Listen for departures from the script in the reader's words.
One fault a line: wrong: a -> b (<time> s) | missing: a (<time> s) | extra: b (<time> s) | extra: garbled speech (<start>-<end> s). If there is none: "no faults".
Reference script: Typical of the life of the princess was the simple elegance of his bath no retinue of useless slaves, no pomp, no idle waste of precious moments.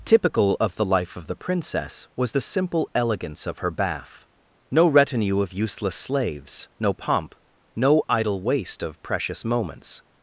wrong: his -> her (3.6 s)